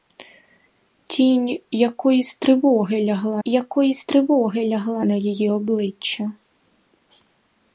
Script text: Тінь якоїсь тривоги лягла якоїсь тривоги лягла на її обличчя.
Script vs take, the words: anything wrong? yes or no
no